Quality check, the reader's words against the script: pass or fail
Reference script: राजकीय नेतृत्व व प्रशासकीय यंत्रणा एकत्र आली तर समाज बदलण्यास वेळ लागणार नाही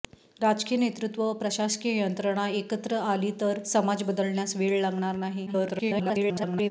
fail